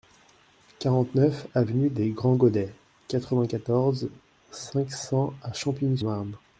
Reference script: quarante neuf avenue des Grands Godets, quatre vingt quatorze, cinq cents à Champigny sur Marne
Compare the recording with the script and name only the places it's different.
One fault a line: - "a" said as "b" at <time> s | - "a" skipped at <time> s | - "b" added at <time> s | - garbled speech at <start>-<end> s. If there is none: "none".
- "sur" skipped at 6.0 s